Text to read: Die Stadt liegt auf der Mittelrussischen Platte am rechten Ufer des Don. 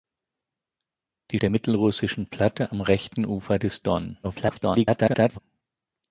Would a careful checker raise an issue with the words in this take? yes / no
yes